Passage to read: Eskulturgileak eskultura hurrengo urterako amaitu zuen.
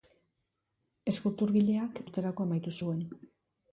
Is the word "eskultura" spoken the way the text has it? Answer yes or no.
no